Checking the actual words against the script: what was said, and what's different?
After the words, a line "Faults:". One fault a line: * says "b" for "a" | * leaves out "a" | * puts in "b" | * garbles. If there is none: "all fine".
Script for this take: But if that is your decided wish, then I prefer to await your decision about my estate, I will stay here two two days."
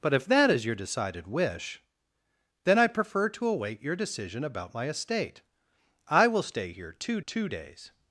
But if that is your decided wish, then I prefer to await your decision about my estate, I will stay here two two days."
Faults:
all fine